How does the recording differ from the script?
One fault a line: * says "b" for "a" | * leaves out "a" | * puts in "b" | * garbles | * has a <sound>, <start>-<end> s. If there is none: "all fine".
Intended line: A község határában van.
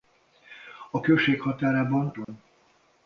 * has a dropout, 2.2-2.3 s